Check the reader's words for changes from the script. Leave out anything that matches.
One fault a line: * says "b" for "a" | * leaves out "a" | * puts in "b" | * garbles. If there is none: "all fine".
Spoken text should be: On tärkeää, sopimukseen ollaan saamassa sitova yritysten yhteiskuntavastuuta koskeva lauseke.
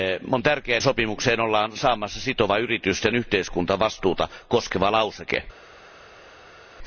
all fine